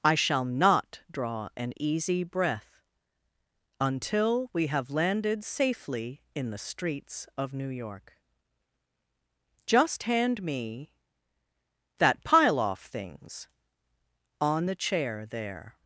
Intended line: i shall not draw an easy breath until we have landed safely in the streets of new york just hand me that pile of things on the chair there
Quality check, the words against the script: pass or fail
fail